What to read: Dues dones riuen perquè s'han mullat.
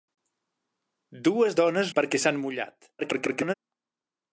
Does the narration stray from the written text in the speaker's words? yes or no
yes